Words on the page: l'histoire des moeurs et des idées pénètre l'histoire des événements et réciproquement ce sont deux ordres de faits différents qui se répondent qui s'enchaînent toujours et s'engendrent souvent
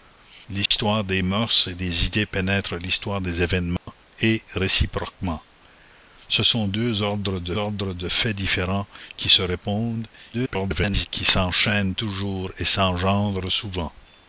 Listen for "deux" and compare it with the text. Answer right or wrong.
right